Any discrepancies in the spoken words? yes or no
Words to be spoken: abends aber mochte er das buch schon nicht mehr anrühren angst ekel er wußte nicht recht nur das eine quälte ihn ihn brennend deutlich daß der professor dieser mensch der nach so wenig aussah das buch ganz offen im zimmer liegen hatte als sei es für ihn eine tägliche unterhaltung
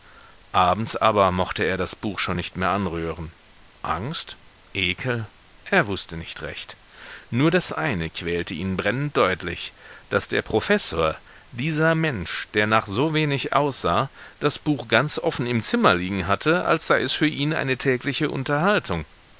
yes